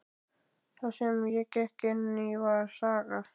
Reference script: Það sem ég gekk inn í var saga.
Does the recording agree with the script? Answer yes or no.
yes